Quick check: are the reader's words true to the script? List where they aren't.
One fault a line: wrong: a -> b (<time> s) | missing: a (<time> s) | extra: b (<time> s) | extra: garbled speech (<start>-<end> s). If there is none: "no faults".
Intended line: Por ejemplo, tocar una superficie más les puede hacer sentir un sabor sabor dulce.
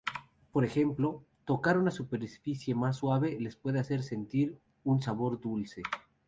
extra: suave (2.9 s)
missing: sabor (5.4 s)